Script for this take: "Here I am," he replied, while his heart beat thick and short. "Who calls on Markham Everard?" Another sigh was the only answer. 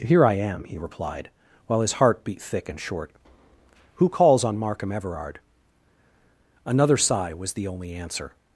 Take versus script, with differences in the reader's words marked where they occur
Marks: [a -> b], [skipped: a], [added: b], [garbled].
"Here I am," he replied, while his heart beat thick and short. "Who calls on Markham Everard?" Another sigh was the only answer.